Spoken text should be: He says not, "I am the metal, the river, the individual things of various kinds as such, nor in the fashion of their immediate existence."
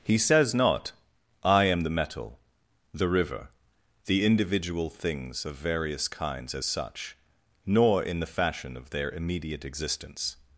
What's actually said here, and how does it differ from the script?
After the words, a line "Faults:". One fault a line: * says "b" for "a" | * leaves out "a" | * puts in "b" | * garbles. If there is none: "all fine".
He says not, "I am the metal, the river, the individual things of various kinds as such, nor in the fashion of their immediate existence."
Faults:
all fine